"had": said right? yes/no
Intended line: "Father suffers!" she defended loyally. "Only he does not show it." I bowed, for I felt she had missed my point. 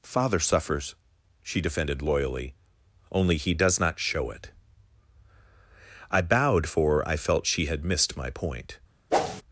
yes